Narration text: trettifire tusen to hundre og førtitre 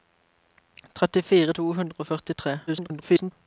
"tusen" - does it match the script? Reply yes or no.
no